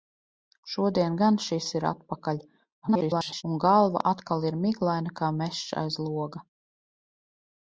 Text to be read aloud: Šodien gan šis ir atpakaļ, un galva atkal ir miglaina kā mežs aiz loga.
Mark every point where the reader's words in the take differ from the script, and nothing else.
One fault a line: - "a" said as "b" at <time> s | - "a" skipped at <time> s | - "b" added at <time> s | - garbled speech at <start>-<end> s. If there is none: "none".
- garbled speech at 2.8-3.4 s